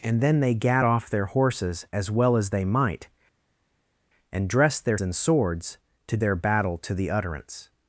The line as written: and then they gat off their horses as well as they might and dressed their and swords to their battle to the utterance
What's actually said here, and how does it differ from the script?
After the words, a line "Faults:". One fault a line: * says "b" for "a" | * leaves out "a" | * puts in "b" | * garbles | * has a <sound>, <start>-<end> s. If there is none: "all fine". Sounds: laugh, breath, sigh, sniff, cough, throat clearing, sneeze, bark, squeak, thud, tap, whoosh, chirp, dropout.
and then they gat off their horses as well as they might and dressed their and swords to their battle to the utterance
Faults:
all fine